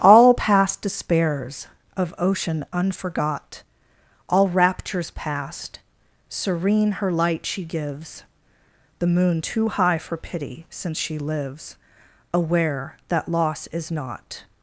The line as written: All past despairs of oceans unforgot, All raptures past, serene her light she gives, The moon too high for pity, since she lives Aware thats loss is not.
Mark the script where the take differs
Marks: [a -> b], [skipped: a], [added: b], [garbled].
All past despairs of [oceans -> ocean] unforgot, All raptures past, serene her light she gives, The moon too high for pity, since she lives Aware [thats -> that] loss is not.